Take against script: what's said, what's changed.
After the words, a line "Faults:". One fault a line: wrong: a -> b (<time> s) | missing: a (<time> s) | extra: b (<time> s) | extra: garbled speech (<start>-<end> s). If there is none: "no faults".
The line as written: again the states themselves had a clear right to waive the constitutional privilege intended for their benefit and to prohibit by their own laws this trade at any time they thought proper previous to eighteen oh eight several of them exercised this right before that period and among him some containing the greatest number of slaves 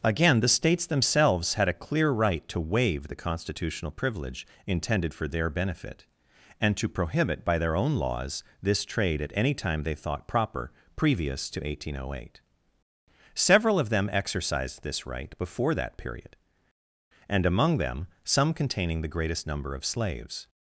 again the states themselves had a clear right to waive the constitutional privilege intended for their benefit and to prohibit by their own laws this trade at any time they thought proper previous to eighteen oh eight several of them exercised this right before that period and among them some containing the greatest number of slaves
Faults:
wrong: him -> them (17.8 s)